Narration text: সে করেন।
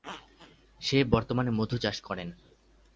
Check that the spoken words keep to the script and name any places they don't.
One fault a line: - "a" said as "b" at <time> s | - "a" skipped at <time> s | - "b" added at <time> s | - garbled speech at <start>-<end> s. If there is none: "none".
- "বর্তমানে মধু চাষ" added at 1.0 s